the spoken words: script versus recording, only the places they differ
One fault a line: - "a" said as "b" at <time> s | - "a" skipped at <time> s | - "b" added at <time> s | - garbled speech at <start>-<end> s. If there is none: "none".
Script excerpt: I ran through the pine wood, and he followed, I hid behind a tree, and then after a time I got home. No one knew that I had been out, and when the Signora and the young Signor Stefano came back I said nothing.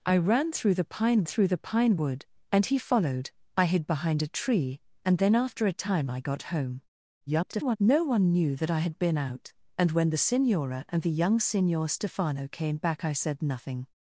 - "through the pine" added at 1.2 s
- garbled speech at 7.3-7.8 s